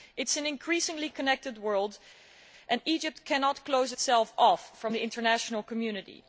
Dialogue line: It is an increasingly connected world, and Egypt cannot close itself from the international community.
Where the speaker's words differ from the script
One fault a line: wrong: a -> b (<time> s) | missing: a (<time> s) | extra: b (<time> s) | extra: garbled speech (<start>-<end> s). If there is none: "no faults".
extra: off (4.4 s)